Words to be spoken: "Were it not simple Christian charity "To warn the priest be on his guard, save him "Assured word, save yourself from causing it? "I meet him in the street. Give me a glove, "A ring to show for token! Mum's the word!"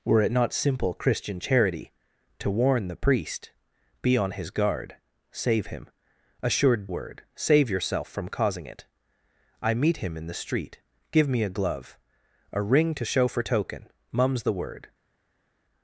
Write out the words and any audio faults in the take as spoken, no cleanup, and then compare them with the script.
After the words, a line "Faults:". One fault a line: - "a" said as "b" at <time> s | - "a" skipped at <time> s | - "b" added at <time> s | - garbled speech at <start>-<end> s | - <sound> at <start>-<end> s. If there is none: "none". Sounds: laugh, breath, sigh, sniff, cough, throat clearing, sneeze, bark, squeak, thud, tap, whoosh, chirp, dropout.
"Were it not simple Christian charity "To warn the priest be on his guard, save him "Assured word, save yourself from causing it? "I meet him in the street. Give me a glove, "A ring to show for token! Mum's the word!"
Faults:
none